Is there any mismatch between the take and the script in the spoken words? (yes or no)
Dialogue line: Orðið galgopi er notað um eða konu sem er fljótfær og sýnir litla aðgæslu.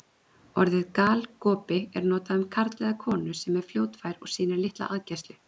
yes